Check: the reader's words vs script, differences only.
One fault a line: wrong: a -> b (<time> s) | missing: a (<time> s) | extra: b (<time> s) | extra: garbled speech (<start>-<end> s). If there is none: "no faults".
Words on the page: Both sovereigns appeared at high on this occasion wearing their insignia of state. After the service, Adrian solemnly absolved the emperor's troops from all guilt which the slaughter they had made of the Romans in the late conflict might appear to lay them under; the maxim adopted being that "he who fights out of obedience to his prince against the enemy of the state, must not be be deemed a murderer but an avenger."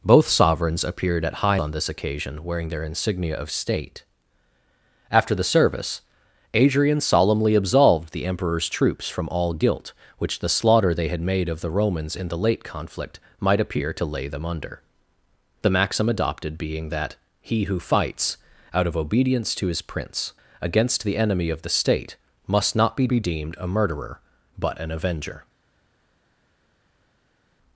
no faults